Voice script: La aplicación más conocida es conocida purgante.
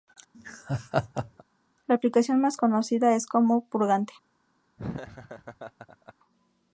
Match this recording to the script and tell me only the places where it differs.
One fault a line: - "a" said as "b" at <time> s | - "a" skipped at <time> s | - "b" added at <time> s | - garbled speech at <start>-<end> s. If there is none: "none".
- "conocida" said as "como" at 3.3 s